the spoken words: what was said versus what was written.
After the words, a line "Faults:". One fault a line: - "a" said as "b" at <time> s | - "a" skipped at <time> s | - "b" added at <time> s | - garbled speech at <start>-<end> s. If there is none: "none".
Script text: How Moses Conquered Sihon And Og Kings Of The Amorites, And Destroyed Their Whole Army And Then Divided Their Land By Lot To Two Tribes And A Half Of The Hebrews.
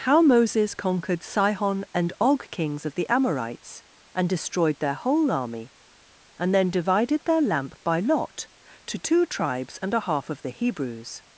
How Moses Conquered Sihon And Og Kings Of The Amorites, And Destroyed Their Whole Army And Then Divided Their Lamp By Lot To Two Tribes And A Half Of The Hebrews.
Faults:
- "Land" said as "Lamp" at 7.4 s